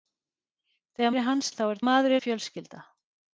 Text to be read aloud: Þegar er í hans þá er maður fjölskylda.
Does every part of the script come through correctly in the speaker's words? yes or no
yes